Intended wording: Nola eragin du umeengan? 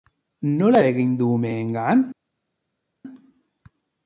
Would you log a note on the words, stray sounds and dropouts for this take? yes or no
no